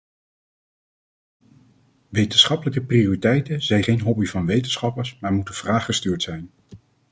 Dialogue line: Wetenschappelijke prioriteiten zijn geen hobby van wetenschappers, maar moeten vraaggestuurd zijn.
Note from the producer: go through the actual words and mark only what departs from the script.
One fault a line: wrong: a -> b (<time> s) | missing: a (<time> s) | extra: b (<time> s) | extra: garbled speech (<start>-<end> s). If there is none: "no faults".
no faults